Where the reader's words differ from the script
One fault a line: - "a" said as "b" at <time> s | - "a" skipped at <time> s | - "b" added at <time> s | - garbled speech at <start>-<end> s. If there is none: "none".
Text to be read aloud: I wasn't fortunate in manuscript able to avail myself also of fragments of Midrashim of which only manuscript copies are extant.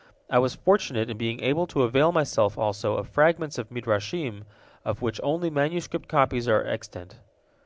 - "wasn't" said as "was" at 0.4 s
- "manuscript" said as "being" at 1.2 s